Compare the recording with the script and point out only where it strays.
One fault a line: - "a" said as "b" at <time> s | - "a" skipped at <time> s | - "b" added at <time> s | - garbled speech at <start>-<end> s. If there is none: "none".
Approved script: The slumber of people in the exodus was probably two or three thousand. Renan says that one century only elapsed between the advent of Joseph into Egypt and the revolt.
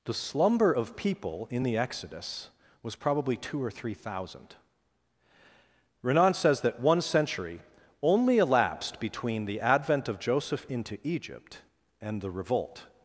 none